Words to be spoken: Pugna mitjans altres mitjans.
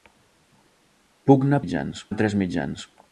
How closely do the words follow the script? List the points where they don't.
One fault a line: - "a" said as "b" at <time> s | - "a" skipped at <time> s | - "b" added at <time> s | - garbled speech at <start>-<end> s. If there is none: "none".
none